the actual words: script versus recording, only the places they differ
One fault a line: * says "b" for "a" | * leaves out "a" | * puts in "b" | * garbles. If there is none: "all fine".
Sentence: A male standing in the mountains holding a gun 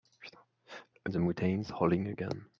* leaves out "male standing"